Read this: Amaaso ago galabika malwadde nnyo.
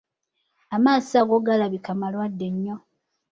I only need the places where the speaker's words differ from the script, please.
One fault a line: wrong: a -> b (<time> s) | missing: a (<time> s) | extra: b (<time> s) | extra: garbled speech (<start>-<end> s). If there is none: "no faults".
no faults